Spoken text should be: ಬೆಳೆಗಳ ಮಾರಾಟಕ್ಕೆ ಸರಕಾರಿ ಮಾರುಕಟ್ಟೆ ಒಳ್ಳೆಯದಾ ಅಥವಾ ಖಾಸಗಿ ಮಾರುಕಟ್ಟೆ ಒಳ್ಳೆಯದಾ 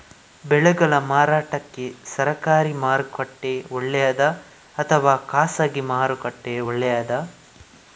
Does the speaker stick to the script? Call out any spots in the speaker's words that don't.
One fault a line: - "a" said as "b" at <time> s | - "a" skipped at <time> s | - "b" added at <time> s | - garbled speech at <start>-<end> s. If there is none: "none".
none